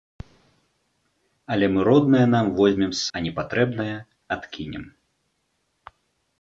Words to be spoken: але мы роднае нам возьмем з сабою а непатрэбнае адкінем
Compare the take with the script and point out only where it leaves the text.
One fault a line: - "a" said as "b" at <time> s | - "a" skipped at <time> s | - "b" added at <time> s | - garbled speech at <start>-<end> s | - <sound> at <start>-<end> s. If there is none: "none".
- "сабою" skipped at 3.0 s